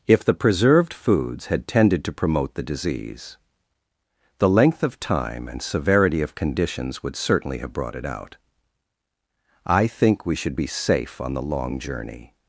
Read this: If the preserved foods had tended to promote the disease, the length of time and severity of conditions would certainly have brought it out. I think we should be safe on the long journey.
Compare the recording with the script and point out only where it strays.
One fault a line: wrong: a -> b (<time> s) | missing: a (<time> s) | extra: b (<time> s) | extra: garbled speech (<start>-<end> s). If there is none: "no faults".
no faults